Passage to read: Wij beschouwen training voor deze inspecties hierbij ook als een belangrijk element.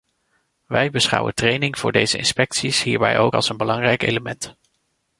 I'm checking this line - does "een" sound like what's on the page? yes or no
yes